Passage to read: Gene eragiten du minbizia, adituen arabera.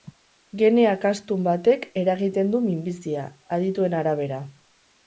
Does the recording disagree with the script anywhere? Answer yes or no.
yes